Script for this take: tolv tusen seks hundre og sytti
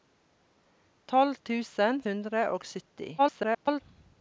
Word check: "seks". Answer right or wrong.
wrong